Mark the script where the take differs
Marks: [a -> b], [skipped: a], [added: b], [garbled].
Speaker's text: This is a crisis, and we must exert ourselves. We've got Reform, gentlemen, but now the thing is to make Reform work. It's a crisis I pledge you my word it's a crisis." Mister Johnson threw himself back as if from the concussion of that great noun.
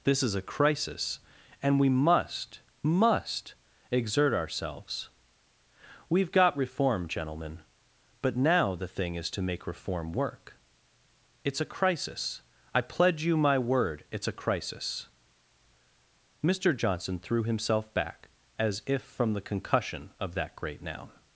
This is a crisis, and we must [added: must] exert ourselves. We've got Reform, gentlemen, but now the thing is to make Reform work. It's a crisis I pledge you my word it's a crisis." Mister Johnson threw himself back as if from the concussion of that great noun.